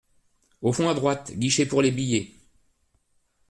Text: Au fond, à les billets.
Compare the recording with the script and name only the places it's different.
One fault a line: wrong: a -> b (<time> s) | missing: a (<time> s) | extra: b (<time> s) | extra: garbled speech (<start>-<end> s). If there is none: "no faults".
extra: droite guichet pour (0.9 s)